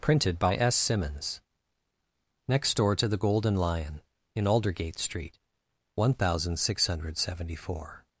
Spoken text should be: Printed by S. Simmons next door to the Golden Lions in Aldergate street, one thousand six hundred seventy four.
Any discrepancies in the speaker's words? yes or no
yes